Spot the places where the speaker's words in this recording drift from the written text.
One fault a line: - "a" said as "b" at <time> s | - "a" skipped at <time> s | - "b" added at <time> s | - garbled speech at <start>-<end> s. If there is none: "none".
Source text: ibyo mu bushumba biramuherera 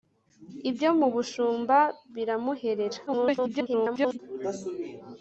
- garbled speech at 3.1-4.2 s